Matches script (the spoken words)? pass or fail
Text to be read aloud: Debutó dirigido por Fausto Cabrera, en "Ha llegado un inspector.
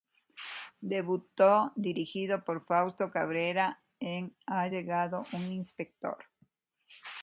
pass